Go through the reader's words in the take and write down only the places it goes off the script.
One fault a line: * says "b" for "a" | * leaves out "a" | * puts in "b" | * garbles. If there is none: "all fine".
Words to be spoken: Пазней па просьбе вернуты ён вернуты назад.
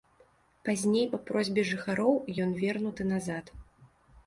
* says "жыхароў" for "вернуты"